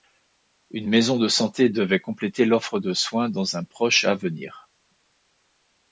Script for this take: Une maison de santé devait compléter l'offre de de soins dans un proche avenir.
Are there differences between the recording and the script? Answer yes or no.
yes